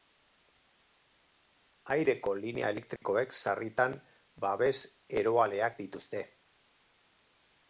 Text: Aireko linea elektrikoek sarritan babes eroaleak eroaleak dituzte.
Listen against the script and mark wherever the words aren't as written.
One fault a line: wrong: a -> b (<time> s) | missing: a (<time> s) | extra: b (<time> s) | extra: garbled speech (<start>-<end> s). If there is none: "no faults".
missing: eroaleak (5.8 s)